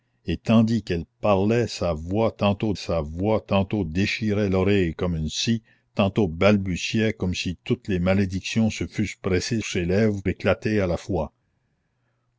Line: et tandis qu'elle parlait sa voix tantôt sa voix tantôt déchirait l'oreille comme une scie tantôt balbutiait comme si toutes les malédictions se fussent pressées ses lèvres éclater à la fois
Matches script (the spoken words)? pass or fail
pass